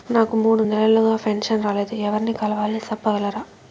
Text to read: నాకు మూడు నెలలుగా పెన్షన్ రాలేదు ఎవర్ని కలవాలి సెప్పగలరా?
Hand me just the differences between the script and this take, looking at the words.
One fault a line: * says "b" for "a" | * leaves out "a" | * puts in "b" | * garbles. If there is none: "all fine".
all fine